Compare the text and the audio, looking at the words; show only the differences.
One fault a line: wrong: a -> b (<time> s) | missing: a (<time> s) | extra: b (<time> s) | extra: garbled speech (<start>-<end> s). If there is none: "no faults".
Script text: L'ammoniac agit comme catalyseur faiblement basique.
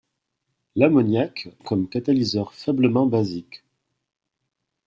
missing: agit (1.5 s)